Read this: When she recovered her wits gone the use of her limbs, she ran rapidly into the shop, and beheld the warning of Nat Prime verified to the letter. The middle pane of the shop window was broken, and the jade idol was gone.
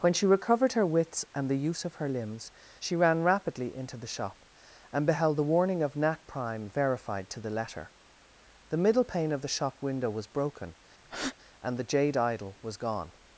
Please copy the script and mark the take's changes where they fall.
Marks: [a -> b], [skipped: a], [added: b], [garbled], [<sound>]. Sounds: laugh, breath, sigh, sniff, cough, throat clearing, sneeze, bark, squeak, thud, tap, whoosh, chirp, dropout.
When she recovered her wits [gone -> and] the use of her limbs, she ran rapidly into the shop, and beheld the warning of Nat Prime verified to the letter. The middle pane of the shop window was broken, [breath] and the jade idol was gone.